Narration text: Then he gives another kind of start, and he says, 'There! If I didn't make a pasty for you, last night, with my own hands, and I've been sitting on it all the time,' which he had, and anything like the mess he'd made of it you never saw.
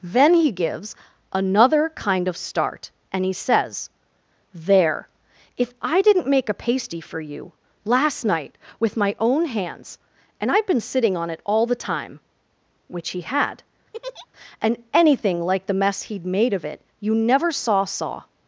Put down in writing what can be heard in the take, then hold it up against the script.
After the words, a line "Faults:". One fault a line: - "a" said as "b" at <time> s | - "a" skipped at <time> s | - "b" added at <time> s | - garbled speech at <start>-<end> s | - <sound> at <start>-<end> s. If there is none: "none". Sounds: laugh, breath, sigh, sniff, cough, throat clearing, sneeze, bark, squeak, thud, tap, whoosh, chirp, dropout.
Then he gives another kind of start, and he says, 'There! If I didn't make a pasty for you, last night, with my own hands, and I've been sitting on it all the time,' which he had, and anything like the mess he'd made of it you never saw saw.
Faults:
- laugh at 13.9-14.3 s
- "saw" added at 17.9 s